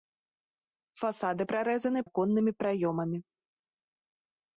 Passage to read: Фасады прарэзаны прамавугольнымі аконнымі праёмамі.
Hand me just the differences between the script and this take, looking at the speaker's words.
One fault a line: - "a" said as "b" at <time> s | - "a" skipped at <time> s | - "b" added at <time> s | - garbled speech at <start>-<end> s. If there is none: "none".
- "прамавугольнымі" skipped at 2.0 s